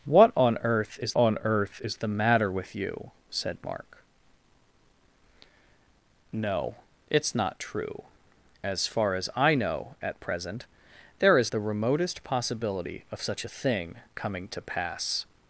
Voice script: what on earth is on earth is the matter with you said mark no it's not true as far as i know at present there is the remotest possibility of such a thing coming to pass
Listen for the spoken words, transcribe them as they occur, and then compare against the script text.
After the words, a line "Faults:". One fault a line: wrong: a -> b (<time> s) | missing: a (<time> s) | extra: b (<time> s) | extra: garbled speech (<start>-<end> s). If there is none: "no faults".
what on earth is on earth is the matter with you said mark no it's not true as far as i know at present there is the remotest possibility of such a thing coming to pass
Faults:
no faults